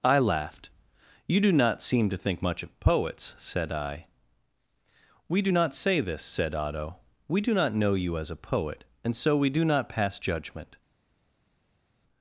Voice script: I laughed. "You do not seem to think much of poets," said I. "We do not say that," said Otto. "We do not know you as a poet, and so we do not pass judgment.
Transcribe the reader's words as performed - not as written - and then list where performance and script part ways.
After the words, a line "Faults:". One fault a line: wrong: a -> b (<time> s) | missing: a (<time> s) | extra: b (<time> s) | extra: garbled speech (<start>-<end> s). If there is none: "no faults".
I laughed. "You do not seem to think much of poets," said I. "We do not say this," said Otto. "We do not know you as a poet, and so we do not pass judgment.
Faults:
wrong: that -> this (6.0 s)